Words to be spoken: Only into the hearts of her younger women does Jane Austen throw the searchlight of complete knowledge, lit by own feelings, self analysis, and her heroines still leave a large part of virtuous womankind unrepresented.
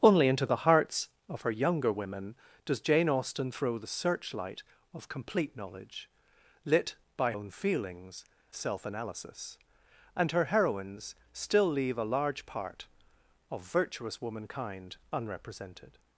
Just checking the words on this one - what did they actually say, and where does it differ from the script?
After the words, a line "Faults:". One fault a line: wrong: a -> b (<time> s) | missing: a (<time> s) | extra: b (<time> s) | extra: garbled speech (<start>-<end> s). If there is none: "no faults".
Only into the hearts of her younger women does Jane Austen throw the searchlight of complete knowledge, lit by own feelings, self analysis, and her heroines still leave a large part of virtuous womankind unrepresented.
Faults:
no faults